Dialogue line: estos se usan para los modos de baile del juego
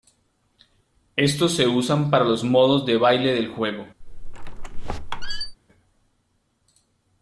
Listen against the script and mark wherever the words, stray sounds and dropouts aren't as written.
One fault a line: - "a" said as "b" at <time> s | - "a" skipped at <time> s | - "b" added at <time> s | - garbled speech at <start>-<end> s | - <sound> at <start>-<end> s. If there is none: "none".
- squeak at 4.0-5.6 s